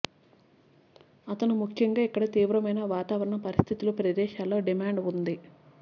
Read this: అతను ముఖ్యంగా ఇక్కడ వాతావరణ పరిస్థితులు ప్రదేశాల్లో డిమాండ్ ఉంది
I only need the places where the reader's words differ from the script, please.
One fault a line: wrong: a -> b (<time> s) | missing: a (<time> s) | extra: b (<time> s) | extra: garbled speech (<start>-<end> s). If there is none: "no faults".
extra: తీవ్రమైన (2.3 s)